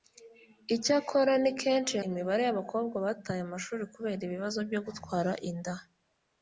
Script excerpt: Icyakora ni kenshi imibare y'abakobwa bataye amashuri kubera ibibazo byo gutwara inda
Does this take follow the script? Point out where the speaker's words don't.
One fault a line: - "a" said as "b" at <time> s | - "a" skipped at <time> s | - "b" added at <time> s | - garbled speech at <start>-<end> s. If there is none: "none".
none